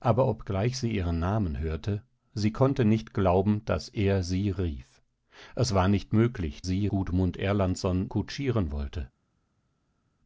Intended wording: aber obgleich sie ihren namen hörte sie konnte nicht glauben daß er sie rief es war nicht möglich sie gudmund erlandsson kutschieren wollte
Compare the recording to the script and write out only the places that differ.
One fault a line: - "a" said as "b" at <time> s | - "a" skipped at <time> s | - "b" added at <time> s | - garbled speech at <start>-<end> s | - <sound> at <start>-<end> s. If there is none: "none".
none